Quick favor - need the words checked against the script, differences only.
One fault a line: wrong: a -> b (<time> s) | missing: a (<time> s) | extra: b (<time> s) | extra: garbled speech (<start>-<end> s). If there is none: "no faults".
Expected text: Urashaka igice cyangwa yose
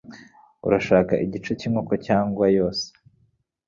extra: cyinkoko (1.6 s)